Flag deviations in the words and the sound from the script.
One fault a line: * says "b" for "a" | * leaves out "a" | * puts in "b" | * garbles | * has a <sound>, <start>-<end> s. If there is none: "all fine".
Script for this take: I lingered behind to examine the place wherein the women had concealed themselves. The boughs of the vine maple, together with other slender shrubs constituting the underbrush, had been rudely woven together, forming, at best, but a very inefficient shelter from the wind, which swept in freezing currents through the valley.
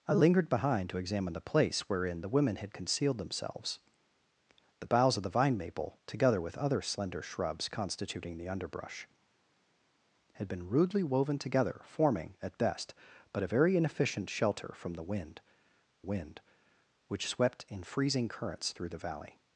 * puts in "wind"